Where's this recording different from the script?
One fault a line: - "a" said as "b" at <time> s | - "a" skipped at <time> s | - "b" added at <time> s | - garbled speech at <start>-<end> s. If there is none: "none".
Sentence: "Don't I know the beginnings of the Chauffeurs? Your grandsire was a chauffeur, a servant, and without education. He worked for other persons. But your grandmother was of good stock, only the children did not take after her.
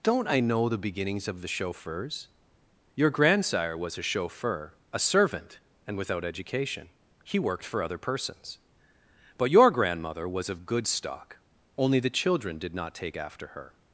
none